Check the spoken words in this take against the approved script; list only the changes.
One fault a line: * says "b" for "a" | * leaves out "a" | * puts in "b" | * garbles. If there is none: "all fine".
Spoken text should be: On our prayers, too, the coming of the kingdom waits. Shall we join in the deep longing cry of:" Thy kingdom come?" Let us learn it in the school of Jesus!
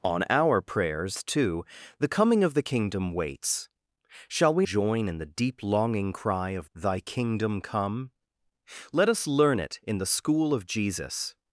all fine